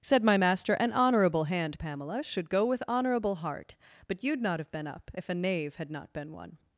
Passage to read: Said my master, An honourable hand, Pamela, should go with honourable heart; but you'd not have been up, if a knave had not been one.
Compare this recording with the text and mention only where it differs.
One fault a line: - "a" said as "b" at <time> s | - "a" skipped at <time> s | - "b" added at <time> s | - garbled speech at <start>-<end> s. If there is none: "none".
none